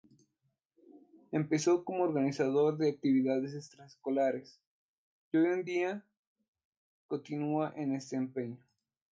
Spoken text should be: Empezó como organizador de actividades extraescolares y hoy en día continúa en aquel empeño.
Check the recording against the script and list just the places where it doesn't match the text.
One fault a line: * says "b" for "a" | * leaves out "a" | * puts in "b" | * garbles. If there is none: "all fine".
* says "este" for "aquel"